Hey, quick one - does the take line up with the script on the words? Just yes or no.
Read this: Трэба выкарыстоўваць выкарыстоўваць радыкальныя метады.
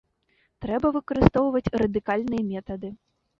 no